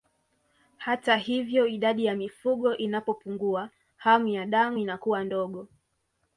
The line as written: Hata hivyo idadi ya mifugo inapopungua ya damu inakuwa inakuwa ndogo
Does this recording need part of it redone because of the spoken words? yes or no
yes